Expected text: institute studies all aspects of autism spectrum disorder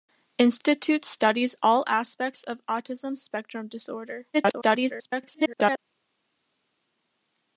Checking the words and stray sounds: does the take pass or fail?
fail